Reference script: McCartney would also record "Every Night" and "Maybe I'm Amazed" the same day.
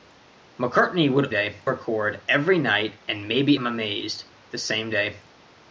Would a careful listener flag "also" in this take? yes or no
yes